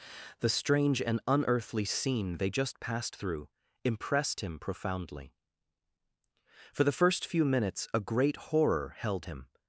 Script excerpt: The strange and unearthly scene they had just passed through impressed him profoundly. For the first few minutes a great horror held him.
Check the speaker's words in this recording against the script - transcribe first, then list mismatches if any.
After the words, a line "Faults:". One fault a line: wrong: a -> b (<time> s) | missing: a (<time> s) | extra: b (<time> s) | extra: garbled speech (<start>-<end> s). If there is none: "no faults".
The strange and unearthly scene they just passed through impressed him profoundly. For the first few minutes a great horror held him.
Faults:
missing: had (2.5 s)